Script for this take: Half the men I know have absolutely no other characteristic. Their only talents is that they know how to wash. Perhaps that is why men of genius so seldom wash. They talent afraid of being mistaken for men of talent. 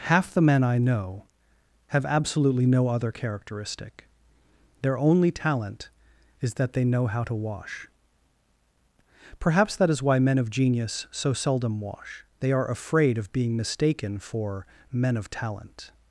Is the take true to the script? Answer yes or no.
no